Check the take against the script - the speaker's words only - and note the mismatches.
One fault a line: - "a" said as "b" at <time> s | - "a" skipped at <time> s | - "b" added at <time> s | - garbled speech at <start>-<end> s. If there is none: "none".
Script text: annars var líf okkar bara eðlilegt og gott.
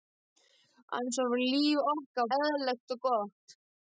- "bara" skipped at 2.3 s